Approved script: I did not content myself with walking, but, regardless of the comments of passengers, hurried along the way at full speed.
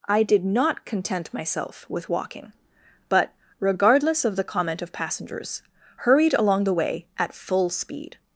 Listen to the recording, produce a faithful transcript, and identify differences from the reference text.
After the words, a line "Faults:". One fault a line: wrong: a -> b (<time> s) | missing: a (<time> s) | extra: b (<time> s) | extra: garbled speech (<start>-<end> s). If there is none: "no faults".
I did not content myself with walking, but, regardless of the comment of passengers, hurried along the way at full speed.
Faults:
wrong: comments -> comment (4.4 s)